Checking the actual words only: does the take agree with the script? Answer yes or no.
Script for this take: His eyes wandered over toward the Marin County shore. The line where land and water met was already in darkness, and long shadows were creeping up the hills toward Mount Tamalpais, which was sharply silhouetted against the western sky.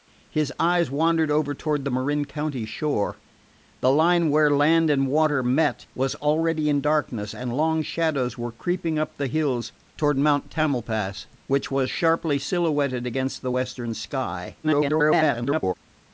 no